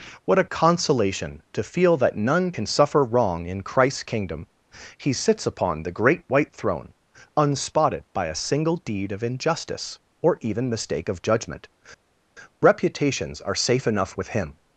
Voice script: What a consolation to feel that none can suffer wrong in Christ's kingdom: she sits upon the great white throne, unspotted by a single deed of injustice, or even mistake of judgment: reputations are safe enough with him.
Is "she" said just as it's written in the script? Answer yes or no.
no